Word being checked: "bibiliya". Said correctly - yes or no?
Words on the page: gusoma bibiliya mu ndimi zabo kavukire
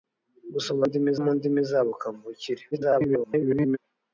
no